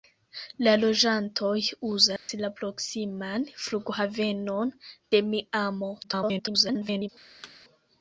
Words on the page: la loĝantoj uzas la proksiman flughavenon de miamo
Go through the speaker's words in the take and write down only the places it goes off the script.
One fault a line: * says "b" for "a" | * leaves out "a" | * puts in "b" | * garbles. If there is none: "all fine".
* garbles